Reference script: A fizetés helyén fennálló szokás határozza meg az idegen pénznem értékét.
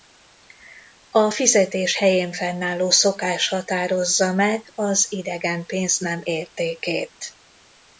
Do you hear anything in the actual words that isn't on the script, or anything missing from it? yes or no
no